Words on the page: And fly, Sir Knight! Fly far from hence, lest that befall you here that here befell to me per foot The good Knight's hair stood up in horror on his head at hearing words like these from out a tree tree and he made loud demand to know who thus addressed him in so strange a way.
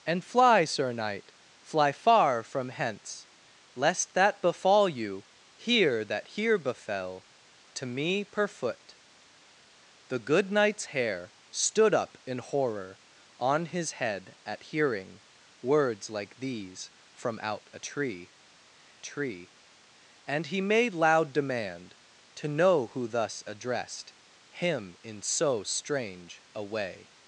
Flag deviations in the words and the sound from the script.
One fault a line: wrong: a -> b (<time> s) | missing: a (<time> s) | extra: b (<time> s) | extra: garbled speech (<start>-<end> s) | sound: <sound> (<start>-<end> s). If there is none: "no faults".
no faults